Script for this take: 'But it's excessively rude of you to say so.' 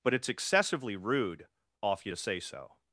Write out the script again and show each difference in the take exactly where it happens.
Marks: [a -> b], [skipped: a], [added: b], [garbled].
'But it's excessively rude [of -> off] you to say so.'